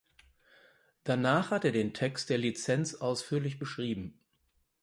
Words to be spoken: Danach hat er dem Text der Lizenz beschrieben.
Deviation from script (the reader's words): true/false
true